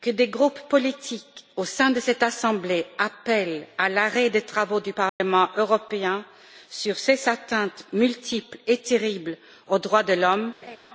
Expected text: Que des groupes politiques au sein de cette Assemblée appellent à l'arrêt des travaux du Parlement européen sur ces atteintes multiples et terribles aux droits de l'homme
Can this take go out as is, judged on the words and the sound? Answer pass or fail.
fail